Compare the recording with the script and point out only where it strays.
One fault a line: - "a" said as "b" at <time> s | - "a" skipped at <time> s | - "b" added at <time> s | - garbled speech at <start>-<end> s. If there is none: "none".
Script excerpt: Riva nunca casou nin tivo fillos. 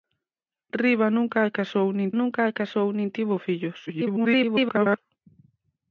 - "nunca casou nin" added at 2.2 s
- garbled speech at 3.9-5.0 s